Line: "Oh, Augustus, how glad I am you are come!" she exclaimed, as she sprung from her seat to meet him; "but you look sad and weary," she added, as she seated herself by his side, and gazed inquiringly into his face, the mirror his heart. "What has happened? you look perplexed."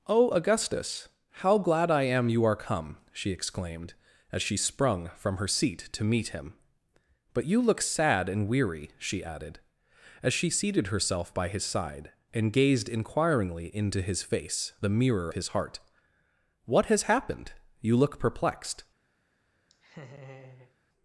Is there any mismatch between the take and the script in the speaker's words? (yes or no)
no